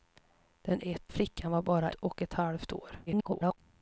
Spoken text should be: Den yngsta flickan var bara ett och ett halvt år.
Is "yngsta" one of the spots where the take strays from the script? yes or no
yes